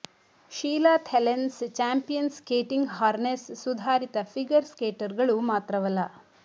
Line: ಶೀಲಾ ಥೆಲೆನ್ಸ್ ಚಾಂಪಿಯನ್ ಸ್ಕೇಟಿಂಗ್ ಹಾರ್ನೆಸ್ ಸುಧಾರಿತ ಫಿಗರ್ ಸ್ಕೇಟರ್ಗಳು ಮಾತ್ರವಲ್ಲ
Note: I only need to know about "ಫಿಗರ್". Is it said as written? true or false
true